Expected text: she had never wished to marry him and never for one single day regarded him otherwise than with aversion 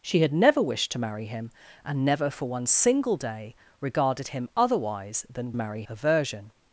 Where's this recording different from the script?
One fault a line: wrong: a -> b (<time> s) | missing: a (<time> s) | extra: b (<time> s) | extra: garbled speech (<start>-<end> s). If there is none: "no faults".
wrong: with -> marry (5.6 s)